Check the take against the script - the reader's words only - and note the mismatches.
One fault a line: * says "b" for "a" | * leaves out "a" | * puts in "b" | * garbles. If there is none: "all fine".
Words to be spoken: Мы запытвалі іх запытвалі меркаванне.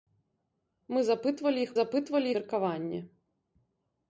all fine